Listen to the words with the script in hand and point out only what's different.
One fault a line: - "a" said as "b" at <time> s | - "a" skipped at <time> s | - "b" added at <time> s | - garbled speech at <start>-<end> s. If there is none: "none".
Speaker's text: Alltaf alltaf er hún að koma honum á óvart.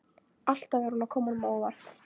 - "alltaf" skipped at 0.9 s